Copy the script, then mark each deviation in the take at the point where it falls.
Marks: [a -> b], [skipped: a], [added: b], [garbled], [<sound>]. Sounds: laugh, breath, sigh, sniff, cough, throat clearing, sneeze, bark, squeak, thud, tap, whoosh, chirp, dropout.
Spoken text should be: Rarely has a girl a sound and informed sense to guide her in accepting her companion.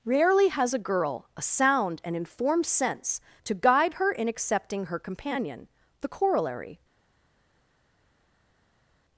Rarely has a girl a sound and informed sense to guide her in accepting her companion. [added: The corollary]